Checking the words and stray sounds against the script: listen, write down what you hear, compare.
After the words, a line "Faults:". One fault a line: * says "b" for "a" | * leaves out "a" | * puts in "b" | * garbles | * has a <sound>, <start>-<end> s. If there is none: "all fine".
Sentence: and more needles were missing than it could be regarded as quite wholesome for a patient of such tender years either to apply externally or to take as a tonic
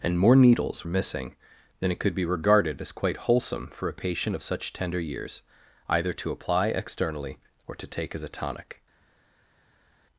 and more needles missing than it could be regarded as quite wholesome for a patient of such tender years either to apply externally or to take as a tonic
Faults:
* leaves out "were"